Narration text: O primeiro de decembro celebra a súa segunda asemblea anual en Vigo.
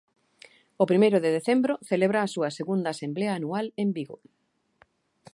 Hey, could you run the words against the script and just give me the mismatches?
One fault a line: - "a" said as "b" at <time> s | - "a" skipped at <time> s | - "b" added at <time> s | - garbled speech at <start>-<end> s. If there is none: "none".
none